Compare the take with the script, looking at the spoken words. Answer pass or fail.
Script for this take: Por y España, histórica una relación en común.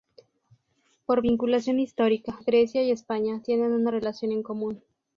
fail